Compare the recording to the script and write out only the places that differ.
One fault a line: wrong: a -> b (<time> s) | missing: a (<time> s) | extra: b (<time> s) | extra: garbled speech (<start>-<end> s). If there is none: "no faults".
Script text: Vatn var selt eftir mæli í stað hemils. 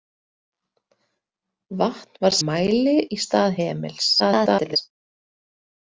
missing: selt eftir (2.4 s)
extra: garbled speech (4.2-4.8 s)